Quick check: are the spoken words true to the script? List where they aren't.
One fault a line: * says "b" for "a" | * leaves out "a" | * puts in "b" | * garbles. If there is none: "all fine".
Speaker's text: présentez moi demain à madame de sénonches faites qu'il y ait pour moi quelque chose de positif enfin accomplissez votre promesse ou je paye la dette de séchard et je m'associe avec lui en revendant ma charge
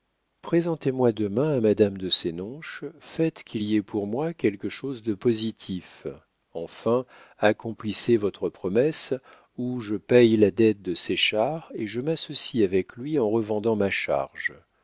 all fine